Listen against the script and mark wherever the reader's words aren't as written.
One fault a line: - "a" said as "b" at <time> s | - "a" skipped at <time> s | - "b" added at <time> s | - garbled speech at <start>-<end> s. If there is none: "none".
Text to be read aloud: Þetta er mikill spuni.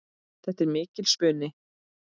none